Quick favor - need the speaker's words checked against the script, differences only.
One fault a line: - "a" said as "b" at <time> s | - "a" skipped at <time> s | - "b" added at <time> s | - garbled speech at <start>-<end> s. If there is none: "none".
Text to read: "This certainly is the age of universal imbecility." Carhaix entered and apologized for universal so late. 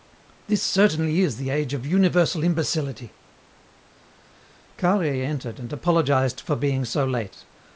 - "universal" said as "being" at 6.5 s